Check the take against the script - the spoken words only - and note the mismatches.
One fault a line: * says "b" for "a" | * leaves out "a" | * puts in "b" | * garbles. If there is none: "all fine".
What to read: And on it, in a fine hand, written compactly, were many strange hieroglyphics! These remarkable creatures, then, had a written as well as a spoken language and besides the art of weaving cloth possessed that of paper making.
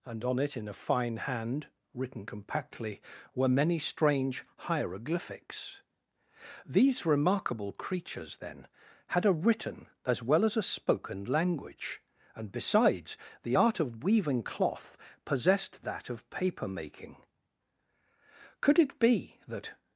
* puts in "Could it be that"